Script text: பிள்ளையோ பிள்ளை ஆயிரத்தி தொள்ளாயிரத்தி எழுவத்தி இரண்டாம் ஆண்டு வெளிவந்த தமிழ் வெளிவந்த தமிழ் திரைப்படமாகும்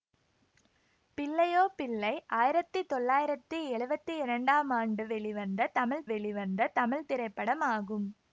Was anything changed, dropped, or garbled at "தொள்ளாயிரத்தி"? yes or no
no